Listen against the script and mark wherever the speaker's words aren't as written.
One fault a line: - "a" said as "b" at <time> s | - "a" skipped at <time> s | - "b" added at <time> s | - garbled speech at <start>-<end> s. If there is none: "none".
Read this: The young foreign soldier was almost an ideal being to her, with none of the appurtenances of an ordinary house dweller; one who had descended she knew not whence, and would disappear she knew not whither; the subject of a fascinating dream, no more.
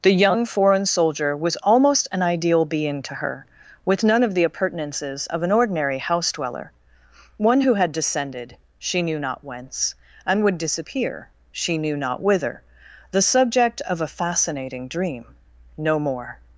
none